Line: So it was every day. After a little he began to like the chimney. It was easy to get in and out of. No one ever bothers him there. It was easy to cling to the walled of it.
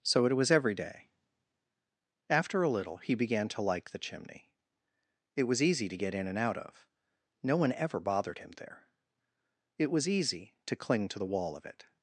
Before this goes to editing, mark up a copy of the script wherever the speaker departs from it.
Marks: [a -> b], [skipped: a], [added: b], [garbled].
So it was every day. After a little he began to like the chimney. It was easy to get in and out of. No one ever [bothers -> bothered] him there. It was easy to cling to the [walled -> wall] of it.